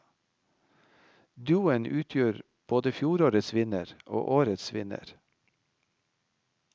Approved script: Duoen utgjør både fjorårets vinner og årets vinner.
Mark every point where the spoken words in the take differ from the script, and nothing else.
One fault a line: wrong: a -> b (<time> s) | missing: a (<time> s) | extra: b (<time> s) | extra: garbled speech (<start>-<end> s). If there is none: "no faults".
no faults